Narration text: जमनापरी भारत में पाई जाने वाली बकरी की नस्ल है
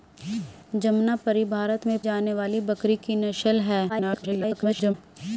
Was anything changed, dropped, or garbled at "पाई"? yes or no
yes